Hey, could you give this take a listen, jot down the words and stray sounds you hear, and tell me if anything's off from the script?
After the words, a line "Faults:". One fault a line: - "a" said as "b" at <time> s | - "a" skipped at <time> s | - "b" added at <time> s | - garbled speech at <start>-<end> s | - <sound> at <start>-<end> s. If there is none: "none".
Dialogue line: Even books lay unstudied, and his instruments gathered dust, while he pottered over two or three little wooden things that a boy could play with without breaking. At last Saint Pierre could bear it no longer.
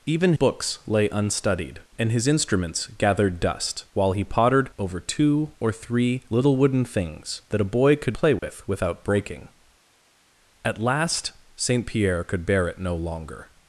Even books lay unstudied, and his instruments gathered dust, while he pottered over two or three little wooden things that a boy could play with without breaking. At last Saint Pierre could bear it no longer.
Faults:
- dropout at 8.4-8.4 s